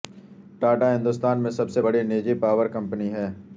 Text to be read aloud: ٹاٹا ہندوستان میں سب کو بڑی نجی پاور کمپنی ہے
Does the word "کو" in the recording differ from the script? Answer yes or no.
yes